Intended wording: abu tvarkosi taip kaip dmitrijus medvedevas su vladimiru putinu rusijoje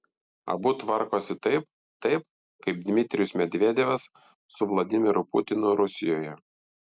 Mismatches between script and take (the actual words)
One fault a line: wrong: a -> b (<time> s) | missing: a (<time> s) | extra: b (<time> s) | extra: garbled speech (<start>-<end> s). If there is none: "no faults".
extra: taip (2.1 s)